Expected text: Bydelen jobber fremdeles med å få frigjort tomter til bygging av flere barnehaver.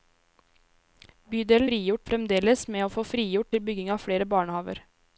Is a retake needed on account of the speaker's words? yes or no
yes